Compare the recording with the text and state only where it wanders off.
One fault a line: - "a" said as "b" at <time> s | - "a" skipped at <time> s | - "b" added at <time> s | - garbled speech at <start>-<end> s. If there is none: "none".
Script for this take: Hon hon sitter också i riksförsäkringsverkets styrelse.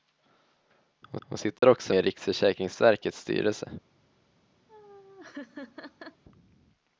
none